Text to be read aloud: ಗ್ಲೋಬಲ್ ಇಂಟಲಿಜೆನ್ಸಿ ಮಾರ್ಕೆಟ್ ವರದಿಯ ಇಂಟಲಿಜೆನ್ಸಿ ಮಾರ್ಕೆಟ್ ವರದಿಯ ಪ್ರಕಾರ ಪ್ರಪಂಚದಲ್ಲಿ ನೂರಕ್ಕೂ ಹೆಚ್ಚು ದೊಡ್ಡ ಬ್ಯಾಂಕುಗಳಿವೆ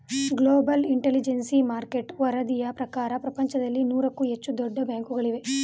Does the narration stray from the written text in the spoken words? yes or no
yes